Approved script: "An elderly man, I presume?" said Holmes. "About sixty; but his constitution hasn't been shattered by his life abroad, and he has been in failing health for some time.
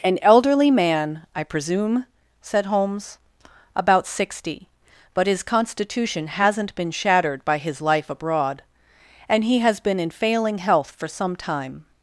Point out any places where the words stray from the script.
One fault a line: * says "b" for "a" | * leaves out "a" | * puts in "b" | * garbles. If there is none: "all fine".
all fine